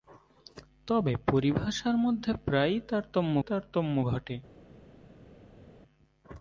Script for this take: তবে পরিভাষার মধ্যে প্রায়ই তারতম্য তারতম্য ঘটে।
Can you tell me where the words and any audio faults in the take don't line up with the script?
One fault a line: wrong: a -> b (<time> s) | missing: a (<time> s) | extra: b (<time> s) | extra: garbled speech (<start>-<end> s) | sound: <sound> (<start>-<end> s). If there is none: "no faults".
no faults